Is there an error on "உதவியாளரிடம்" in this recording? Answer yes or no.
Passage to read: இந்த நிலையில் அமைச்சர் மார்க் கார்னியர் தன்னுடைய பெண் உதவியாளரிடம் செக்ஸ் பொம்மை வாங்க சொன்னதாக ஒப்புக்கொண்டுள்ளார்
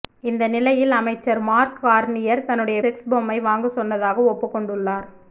yes